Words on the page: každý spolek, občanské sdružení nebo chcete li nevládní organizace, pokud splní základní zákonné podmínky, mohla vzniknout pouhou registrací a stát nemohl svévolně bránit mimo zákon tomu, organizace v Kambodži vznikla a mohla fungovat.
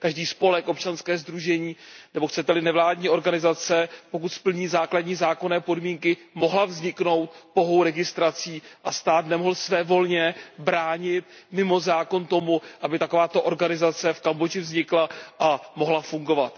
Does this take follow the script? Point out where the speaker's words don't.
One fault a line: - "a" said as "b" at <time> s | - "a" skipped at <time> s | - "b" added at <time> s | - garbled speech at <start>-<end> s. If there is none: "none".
- "aby takováto" added at 12.8 s